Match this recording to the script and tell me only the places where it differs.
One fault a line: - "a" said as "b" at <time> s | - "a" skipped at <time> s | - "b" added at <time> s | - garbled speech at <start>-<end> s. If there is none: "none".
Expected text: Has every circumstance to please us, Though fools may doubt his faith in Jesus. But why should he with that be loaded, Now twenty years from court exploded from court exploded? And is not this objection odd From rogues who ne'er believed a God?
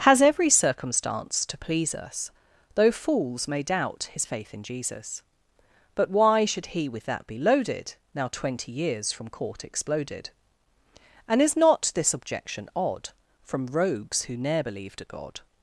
- "from court exploded" skipped at 10.3 s